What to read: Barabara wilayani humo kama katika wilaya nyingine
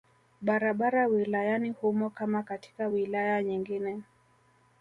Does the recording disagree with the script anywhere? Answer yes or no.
no